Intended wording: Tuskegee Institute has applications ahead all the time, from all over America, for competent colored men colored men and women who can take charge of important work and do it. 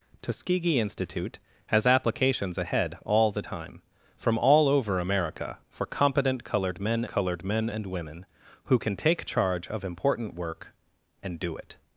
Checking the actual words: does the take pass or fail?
pass